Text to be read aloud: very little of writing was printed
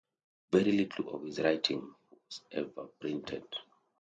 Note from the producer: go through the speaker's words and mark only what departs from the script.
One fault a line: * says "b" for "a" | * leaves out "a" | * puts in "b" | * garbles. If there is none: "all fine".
* puts in "his"
* puts in "ever"